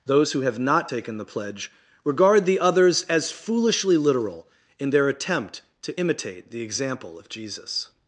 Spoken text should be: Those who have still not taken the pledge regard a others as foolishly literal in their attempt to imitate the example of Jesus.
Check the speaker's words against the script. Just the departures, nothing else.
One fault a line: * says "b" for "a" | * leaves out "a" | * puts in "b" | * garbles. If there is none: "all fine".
* leaves out "still"
* says "the" for "a"